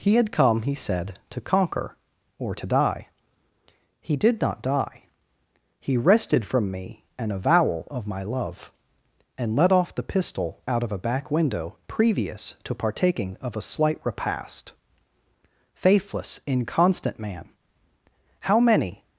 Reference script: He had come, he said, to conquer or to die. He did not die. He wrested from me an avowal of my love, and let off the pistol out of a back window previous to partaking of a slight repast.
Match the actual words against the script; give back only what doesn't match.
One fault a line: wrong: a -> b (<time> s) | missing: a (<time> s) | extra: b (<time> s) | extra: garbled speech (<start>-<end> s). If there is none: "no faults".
extra: Faithless inconstant man How many (15.7 s)